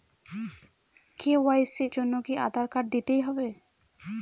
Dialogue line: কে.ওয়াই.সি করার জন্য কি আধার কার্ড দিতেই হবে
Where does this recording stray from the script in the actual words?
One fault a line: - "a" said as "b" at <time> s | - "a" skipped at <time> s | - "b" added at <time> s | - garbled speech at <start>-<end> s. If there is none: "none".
- "করার" skipped at 1.9 s